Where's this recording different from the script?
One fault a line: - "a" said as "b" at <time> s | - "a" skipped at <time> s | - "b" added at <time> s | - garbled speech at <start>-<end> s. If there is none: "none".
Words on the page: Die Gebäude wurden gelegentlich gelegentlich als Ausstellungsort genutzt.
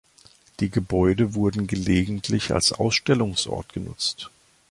- "gelegentlich" skipped at 2.5 s